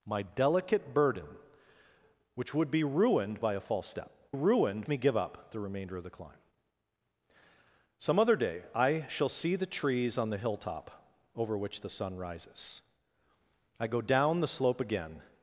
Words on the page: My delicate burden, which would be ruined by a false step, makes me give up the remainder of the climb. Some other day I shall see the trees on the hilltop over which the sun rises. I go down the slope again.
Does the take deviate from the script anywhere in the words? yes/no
yes